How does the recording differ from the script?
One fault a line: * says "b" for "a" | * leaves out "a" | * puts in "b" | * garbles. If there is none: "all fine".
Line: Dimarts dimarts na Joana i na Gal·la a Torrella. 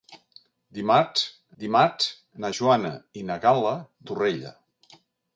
all fine